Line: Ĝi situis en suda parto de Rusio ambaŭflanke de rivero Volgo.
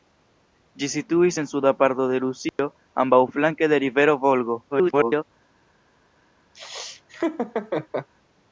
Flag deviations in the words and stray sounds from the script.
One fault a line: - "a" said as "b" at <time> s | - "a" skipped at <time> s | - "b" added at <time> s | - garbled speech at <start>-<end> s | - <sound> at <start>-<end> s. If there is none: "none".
- dropout at 2.5-2.6 s
- garbled speech at 4.7-5.2 s
- laugh at 6.5-8.1 s